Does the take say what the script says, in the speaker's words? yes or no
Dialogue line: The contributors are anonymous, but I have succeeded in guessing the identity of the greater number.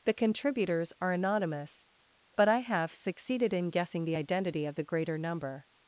yes